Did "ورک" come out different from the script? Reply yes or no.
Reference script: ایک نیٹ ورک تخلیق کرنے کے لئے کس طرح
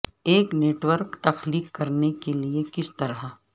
no